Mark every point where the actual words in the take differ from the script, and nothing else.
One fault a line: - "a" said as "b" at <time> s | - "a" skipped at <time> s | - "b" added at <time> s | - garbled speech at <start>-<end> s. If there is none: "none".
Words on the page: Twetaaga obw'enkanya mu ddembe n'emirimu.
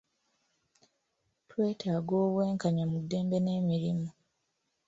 none